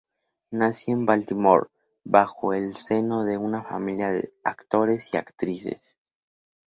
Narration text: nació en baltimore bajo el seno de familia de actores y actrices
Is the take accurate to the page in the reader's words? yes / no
no